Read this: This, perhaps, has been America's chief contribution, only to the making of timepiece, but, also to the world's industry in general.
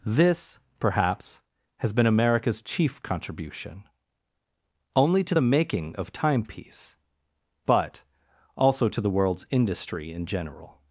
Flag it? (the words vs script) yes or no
no